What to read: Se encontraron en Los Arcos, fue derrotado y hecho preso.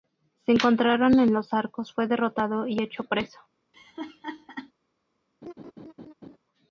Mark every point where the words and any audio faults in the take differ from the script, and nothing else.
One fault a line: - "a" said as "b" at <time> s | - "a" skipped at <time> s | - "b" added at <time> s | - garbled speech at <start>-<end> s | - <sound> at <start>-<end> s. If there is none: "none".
- laugh at 3.7-4.7 s
- laugh at 5.4-6.4 s